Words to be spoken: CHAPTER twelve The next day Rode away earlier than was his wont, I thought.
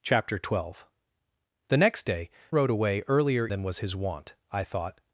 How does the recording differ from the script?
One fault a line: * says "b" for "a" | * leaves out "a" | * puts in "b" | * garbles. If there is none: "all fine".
all fine